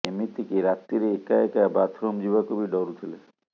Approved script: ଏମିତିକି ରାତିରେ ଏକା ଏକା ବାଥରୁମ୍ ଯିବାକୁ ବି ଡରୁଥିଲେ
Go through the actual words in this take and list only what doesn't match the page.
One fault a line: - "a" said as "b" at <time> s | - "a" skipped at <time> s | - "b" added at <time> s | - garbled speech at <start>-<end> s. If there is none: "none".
none